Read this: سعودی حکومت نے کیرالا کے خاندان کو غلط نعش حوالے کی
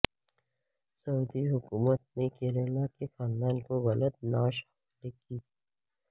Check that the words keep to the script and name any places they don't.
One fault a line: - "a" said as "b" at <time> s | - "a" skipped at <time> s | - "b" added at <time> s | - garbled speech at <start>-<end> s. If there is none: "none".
none